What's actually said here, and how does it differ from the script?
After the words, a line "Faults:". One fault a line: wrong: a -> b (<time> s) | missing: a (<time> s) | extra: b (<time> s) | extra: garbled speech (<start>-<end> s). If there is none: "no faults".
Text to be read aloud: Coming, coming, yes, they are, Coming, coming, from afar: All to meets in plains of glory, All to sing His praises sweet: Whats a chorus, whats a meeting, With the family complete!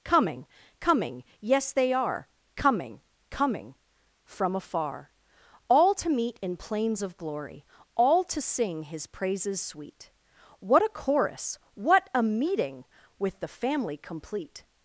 Coming, coming, yes, they are, Coming, coming, from afar: All to meet in plains of glory, All to sing His praises sweet: What a chorus, what a meeting, With the family complete!
Faults:
wrong: meets -> meet (6.1 s)
wrong: Whats -> What (10.6 s)
wrong: whats -> what (11.7 s)